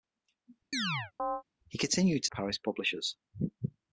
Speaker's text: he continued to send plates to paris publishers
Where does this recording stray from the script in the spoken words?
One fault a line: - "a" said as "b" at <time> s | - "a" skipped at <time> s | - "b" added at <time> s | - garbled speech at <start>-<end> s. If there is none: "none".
- "send plates" skipped at 2.3 s